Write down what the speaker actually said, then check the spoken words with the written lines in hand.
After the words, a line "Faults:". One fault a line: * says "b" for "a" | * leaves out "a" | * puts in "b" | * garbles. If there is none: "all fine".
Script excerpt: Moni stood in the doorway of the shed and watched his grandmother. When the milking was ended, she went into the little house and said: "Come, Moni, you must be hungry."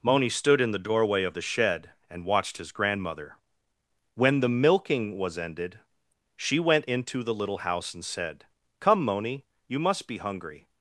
Moni stood in the doorway of the shed and watched his grandmother. When the milking was ended, she went into the little house and said: "Come, Moni, you must be hungry."
Faults:
all fine